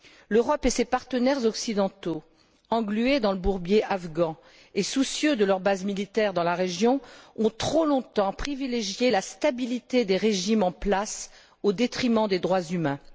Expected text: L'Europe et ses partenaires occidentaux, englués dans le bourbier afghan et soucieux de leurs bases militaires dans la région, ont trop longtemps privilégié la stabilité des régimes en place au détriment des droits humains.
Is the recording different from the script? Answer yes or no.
no